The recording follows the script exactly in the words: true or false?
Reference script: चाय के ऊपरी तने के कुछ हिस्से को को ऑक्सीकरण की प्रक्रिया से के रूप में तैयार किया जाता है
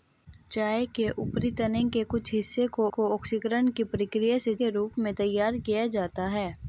true